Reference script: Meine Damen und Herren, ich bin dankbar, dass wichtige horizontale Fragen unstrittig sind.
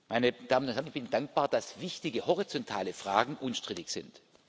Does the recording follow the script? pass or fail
pass